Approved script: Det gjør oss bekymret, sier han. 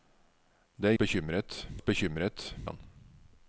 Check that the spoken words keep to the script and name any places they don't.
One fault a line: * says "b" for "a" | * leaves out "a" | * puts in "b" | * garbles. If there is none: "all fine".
* says "bekymret" for "gjør"
* leaves out "sier"